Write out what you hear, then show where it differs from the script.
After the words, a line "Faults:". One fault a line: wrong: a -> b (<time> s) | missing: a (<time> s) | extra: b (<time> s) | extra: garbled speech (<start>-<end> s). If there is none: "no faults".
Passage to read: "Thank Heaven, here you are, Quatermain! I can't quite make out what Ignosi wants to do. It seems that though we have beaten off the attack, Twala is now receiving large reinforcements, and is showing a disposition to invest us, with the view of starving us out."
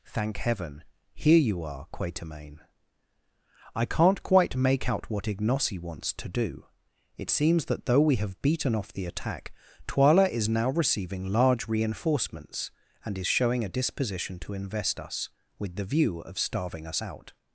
"Thank Heaven, here you are, Quatermain! I can't quite make out what Ignosi wants to do. It seems that though we have beaten off the attack, Twala is now receiving large reinforcements, and is showing a disposition to invest us, with the view of starving us out."
Faults:
no faults